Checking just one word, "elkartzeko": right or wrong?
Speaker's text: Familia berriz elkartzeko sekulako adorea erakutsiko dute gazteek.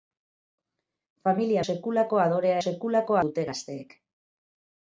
wrong